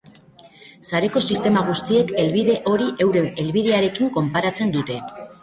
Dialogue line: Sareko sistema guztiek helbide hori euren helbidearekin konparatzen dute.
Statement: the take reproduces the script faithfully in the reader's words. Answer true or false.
true